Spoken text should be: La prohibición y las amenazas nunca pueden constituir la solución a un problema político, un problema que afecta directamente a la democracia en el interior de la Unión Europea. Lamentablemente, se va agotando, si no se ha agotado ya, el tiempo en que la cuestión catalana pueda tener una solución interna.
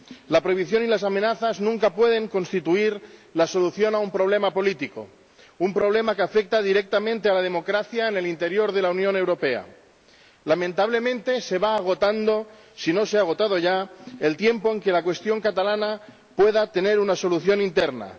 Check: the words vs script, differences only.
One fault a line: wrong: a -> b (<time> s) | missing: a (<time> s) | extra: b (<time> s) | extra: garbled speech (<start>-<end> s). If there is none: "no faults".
no faults